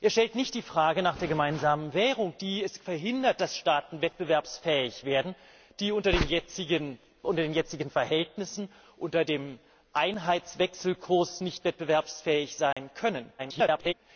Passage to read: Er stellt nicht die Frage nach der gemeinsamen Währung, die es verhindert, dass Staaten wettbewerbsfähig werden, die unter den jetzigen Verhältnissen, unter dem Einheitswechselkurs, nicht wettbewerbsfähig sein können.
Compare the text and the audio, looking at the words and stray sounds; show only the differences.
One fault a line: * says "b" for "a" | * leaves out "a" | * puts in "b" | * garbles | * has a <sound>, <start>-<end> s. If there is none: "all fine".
* has a dropout, 12.7-12.8 s
* garbles